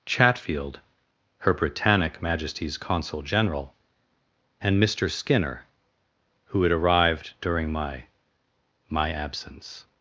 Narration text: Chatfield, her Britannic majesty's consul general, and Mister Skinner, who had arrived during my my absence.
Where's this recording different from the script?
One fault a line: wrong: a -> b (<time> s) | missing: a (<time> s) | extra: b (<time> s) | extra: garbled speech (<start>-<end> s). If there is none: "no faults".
no faults